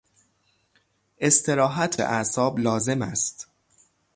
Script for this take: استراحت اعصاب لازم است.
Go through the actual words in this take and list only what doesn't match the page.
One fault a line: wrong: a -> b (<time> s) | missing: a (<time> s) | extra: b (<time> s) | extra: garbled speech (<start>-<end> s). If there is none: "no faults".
no faults